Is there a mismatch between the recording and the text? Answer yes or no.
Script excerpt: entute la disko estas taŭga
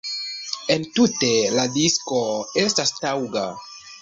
no